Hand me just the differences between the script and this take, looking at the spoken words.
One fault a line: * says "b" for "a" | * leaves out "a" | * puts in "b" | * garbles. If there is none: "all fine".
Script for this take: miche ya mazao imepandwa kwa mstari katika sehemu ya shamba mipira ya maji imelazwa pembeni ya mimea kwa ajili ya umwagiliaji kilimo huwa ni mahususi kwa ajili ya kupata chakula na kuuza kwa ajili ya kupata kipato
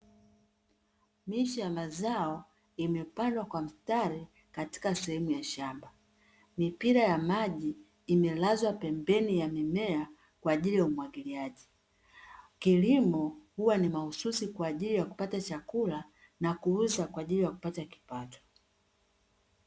all fine